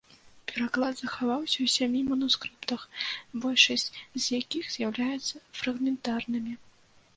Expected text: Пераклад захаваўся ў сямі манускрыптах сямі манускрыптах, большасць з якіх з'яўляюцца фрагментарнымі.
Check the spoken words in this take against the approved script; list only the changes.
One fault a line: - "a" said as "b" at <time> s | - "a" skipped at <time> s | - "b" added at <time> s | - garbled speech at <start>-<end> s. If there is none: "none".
- "сямі манускрыптах" skipped at 2.8 s